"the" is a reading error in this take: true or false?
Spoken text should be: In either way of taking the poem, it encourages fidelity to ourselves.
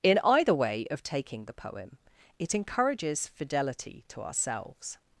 false